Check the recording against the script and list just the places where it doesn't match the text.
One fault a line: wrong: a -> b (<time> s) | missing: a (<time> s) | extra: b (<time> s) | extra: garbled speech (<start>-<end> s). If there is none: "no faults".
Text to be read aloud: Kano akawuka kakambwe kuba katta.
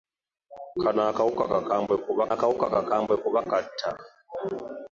extra: akawuka kakambwe kuba (2.3 s)